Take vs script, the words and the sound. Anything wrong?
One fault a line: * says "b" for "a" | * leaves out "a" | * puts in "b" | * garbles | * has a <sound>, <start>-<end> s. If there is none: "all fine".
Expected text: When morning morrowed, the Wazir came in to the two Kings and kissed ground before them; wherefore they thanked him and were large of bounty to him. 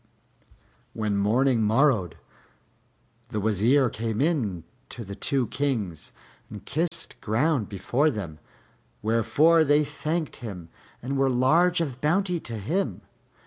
* has a dropout, 6.9-6.9 s